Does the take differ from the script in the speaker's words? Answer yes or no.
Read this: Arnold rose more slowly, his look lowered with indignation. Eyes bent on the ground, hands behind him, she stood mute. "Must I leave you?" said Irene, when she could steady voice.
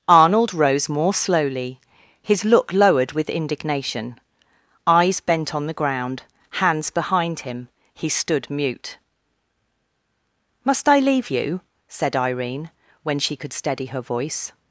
yes